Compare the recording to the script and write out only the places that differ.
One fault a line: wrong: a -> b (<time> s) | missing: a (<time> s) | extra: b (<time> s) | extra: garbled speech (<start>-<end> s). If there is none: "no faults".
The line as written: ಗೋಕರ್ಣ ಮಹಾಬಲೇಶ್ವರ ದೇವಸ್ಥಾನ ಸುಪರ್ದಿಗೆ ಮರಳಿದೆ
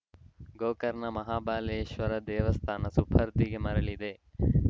no faults